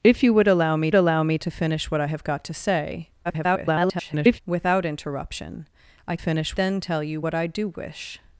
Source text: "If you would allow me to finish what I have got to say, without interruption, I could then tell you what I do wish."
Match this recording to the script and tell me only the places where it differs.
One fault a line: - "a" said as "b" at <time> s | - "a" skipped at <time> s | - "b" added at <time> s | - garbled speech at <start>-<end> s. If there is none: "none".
- "allow me" added at 0.9 s
- garbled speech at 3.2-4.4 s
- "could" said as "finish" at 6.2 s